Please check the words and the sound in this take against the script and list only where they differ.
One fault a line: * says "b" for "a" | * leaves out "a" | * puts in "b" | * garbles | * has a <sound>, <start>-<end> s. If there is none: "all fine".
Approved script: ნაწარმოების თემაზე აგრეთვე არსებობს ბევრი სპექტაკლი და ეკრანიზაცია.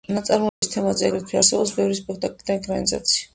* has a dropout, 0.5-0.6 s